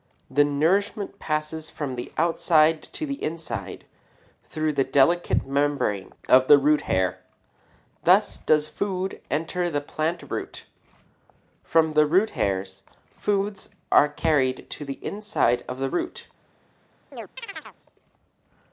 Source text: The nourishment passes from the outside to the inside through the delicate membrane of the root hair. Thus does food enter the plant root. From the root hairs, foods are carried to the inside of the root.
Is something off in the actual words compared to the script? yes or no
no